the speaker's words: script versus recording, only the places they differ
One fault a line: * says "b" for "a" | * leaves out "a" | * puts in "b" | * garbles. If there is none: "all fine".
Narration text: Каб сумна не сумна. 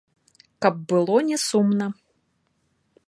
* says "было" for "сумна"